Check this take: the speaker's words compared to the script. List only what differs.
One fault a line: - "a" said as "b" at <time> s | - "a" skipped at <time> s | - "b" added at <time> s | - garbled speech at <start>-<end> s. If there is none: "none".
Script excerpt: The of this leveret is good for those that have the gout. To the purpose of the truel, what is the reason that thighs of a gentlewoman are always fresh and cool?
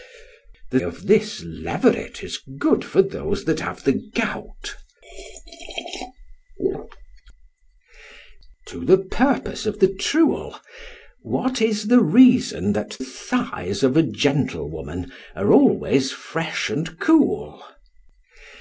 none